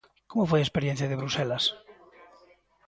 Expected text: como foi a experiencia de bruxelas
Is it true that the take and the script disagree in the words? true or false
false